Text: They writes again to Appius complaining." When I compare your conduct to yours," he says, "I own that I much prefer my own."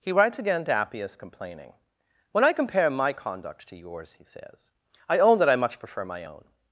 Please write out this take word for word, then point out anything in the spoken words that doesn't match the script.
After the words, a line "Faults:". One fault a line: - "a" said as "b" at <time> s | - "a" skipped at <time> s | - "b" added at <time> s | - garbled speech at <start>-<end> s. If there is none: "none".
He writes again to Appius complaining." When I compare my conduct to yours," he says, "I own that I much prefer my own."
Faults:
- "They" said as "He" at 0.0 s
- "your" said as "my" at 2.9 s